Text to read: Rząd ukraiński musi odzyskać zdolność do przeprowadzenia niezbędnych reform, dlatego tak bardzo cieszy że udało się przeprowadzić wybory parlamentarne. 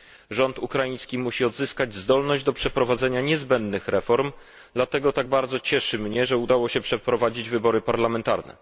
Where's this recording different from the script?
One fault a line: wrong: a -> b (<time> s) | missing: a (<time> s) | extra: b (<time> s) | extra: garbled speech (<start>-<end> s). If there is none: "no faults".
extra: mnie (6.0 s)